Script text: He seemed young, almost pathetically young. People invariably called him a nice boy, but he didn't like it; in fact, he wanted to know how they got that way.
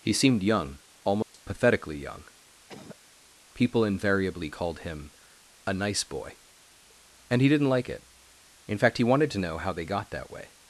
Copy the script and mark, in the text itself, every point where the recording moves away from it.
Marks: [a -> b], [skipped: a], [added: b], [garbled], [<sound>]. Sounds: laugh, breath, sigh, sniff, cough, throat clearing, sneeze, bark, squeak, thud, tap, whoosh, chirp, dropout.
He seemed young, almost [dropout] pathetically young. [cough] People invariably called him a nice boy, [but -> and] he didn't like it; in fact, he wanted to know how they got that way.